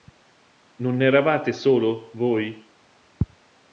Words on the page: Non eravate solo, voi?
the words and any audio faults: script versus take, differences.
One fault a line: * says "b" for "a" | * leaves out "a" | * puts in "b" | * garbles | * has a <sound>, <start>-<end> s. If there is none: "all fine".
all fine